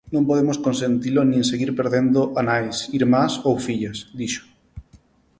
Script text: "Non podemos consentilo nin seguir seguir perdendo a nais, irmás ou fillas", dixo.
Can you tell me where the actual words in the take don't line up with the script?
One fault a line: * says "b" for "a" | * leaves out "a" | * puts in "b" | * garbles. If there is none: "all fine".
* leaves out "seguir"